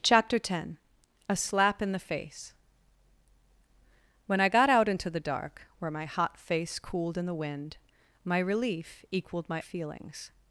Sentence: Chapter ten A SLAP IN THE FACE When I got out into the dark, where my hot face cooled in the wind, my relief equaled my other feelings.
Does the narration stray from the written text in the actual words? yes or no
yes